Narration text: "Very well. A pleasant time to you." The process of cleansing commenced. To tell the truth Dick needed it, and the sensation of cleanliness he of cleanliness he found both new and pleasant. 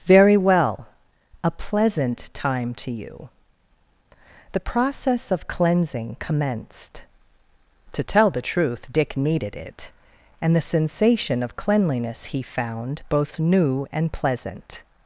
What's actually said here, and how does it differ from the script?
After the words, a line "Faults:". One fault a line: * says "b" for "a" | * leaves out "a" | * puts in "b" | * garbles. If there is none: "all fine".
"Very well. A pleasant time to you." The process of cleansing commenced. To tell the truth Dick needed it, and the sensation of cleanliness he found both new and pleasant.
Faults:
* leaves out "of cleanliness he"